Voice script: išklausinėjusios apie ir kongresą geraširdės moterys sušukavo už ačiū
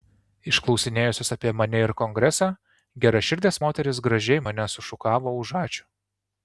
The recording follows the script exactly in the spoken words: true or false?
false